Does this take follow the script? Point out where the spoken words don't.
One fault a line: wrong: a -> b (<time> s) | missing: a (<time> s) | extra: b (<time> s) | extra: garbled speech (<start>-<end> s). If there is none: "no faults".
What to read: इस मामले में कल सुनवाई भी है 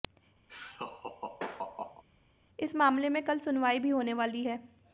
extra: होने वाली (3.9 s)